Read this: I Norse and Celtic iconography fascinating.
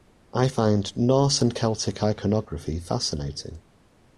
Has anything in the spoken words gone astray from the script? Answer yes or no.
yes